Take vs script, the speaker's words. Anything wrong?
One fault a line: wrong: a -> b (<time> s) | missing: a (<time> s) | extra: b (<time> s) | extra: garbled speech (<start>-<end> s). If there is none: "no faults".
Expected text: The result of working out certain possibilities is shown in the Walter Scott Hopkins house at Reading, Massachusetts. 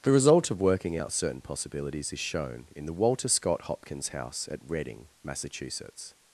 no faults